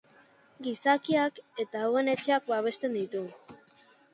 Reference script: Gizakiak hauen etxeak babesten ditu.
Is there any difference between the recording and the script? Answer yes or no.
yes